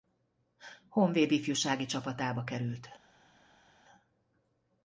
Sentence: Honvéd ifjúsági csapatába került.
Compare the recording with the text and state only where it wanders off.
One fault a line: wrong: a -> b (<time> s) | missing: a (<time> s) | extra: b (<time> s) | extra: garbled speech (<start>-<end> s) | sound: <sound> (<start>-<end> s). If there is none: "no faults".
no faults